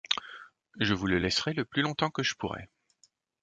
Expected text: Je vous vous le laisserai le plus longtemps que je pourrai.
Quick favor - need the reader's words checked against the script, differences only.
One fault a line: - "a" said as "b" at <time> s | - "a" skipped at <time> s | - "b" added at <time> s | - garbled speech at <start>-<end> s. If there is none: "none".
- "vous" skipped at 1.1 s